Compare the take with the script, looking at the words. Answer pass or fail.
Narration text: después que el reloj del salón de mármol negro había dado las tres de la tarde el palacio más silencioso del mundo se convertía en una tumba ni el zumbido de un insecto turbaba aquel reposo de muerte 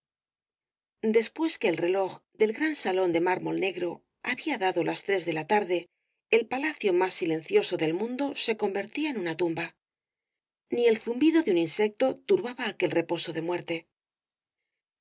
fail